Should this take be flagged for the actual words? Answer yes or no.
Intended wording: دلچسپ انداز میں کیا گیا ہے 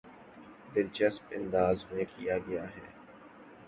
no